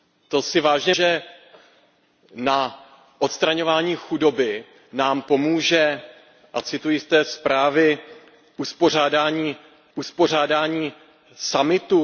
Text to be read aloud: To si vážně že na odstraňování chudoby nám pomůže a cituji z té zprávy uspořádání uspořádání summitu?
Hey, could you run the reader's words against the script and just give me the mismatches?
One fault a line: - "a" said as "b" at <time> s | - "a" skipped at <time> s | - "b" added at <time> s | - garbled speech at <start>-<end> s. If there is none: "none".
none